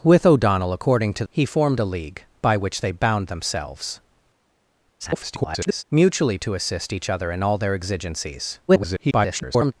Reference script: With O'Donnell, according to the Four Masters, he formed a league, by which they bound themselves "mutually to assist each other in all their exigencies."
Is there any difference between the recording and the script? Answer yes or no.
yes